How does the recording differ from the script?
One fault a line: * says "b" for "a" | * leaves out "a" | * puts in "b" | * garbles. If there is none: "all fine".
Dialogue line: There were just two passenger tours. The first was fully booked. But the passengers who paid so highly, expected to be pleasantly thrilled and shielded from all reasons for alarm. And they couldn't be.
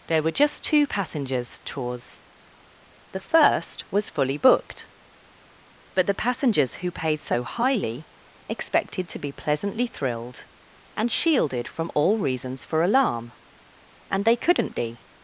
* says "passengers" for "passenger"